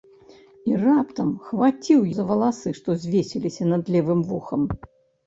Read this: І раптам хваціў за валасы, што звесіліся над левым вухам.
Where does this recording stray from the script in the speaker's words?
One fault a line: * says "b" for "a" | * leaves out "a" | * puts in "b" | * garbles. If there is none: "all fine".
all fine